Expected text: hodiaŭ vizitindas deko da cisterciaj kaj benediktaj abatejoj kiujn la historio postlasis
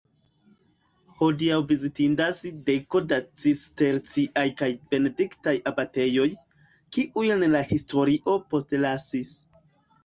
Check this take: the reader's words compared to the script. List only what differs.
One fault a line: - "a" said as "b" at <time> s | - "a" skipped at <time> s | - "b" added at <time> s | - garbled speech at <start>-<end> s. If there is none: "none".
none